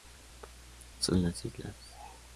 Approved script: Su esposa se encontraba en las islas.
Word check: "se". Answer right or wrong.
wrong